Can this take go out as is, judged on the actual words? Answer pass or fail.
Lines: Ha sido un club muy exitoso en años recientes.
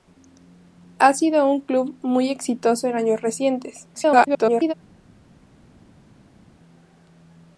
fail